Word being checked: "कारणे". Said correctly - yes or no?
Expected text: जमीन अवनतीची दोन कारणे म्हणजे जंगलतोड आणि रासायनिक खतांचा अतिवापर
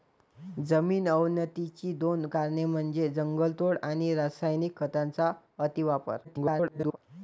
yes